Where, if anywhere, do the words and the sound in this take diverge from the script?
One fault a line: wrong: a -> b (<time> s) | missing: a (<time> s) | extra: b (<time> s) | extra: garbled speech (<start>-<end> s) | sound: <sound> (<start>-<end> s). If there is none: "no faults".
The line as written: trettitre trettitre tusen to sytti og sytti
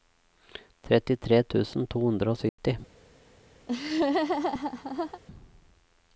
missing: trettitre (1.4 s)
wrong: sytti -> hundre (2.1 s)
sound: dropout (2.5-2.6 s)
sound: laugh (3.7-5.2 s)